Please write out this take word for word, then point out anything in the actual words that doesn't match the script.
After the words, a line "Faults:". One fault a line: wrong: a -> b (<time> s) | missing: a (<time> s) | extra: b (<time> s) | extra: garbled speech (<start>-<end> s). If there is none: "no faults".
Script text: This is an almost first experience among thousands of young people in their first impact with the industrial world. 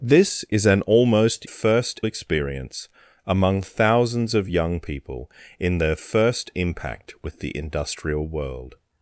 This is an almost first experience among thousands of young people in their first impact with the industrial world.
Faults:
no faults